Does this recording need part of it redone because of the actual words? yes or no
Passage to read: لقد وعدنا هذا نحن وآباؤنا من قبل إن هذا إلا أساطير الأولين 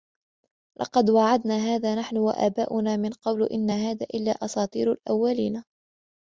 no